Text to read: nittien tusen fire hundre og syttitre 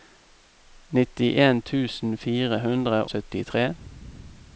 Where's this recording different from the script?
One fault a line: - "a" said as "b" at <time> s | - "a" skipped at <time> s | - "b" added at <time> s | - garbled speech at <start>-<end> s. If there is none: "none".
- "og" skipped at 3.0 s